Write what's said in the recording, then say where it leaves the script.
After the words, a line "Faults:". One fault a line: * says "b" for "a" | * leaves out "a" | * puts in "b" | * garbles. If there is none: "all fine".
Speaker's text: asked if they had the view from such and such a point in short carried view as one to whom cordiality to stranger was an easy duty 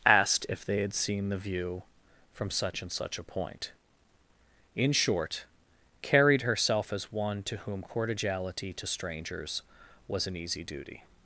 asked if they had seen the view from such and such a point in short carried herself as one to whom cordiality to strangers was an easy duty
Faults:
* puts in "seen"
* says "herself" for "view"
* says "strangers" for "stranger"